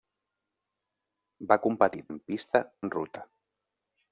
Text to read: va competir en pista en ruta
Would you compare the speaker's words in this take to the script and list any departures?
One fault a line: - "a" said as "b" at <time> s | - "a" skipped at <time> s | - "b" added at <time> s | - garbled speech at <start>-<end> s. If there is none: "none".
none